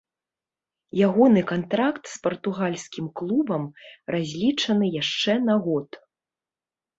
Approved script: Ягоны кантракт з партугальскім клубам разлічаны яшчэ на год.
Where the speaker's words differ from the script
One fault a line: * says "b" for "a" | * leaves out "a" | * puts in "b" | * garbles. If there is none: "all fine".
all fine